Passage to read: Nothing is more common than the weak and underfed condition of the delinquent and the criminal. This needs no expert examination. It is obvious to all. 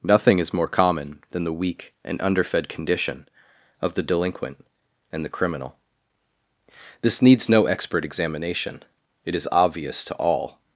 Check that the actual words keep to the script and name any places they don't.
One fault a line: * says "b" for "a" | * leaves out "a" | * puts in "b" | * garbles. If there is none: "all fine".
all fine